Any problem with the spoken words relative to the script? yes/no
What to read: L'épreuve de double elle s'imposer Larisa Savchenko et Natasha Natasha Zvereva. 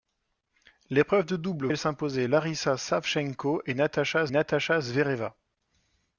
no